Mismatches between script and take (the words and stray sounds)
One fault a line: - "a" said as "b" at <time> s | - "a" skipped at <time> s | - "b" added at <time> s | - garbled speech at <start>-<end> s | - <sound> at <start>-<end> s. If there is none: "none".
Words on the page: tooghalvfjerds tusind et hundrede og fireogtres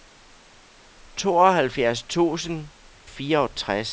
- "et hundrede og" skipped at 2.7 s